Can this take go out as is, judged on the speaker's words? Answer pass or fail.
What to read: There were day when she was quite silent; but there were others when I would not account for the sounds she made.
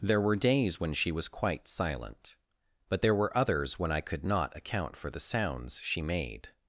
fail